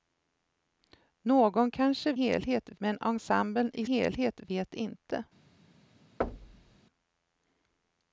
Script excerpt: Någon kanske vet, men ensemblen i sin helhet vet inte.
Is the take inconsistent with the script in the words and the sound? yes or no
yes